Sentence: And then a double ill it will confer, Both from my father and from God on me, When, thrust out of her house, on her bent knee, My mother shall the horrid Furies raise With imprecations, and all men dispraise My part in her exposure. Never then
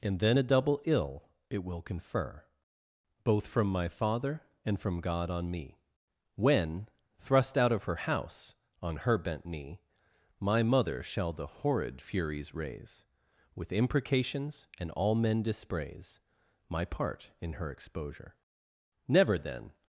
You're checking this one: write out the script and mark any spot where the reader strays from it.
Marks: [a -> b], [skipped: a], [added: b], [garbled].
And then a double ill it will confer, Both from my father and from God on me, When, thrust out of her house, on her bent knee, My mother shall the horrid Furies raise With imprecations, and all men dispraise My part in her exposure. Never then